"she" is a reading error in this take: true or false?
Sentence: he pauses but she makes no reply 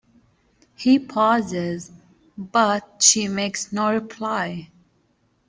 false